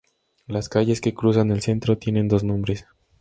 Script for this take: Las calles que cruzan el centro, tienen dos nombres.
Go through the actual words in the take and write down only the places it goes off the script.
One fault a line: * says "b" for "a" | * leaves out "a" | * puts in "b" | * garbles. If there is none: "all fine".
all fine